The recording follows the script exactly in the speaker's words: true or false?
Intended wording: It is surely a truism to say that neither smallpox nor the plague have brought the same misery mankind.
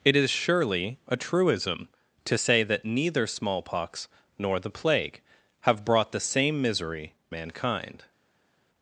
true